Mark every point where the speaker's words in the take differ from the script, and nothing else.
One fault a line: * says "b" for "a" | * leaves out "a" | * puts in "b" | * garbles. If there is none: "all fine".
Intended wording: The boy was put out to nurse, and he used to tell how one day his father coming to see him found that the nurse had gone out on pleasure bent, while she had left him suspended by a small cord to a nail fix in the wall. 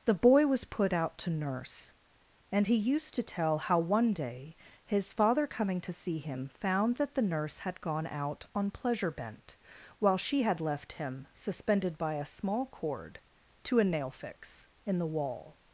all fine